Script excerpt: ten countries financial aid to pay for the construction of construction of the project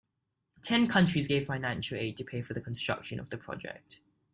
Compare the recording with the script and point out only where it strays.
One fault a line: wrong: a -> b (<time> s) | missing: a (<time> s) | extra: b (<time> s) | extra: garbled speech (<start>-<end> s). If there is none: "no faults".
extra: gave (1.2 s)
missing: construction of (3.3 s)